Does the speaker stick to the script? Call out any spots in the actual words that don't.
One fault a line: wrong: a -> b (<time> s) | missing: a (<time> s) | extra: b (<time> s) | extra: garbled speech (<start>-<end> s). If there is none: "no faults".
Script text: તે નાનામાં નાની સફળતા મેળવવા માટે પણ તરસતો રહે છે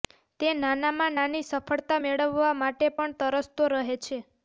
no faults